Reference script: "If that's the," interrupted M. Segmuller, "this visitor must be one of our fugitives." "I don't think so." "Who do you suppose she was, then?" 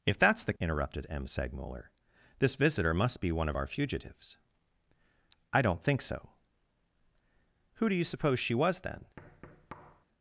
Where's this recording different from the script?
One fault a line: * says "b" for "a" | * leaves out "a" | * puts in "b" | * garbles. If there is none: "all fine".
all fine